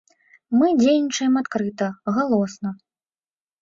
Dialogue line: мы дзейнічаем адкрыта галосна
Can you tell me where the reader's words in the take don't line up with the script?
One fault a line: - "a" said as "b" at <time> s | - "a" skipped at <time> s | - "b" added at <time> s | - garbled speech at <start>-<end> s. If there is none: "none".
none